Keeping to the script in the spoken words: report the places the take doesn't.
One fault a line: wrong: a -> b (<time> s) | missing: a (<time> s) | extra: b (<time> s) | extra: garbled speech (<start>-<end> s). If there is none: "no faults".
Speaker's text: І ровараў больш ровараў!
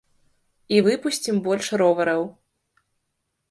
wrong: ровараў -> выпусцім (0.9 s)